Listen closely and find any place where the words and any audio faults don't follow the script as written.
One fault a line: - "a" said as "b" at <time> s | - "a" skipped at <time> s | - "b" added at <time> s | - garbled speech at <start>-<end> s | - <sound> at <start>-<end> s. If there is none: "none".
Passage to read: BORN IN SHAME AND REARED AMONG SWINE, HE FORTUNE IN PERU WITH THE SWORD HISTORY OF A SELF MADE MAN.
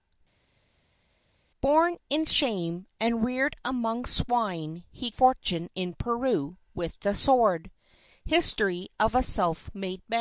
none